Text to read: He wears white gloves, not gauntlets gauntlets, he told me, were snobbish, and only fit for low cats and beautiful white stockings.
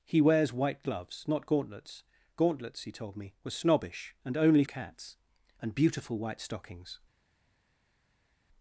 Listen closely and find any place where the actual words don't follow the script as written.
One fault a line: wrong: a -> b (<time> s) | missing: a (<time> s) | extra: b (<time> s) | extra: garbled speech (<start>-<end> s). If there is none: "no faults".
missing: fit for low (4.6 s)